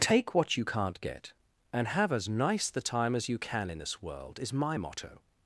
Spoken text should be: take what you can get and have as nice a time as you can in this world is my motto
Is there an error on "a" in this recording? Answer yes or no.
yes